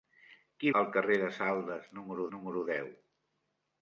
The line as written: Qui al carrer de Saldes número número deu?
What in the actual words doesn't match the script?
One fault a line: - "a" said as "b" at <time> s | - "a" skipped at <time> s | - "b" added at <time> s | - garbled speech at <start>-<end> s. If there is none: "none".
none